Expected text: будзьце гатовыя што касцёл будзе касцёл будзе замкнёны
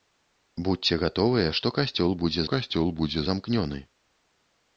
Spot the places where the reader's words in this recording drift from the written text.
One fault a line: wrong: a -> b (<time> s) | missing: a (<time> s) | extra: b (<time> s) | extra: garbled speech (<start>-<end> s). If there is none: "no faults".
no faults